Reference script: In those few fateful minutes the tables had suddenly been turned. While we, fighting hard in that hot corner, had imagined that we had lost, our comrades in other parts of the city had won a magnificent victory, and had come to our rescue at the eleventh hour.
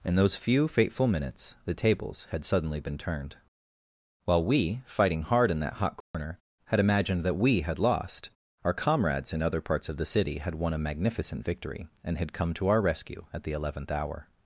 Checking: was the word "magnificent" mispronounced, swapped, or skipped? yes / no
no